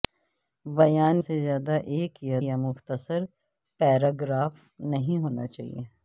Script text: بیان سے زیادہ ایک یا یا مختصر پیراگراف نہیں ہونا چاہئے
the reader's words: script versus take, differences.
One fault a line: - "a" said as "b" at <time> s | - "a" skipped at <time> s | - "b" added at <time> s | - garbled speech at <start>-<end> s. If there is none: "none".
none